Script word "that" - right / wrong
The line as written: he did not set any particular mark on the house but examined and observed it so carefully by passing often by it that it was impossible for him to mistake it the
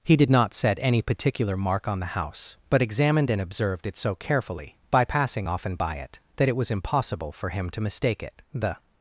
right